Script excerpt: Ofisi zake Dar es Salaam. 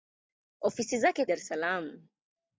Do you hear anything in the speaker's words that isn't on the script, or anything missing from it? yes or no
no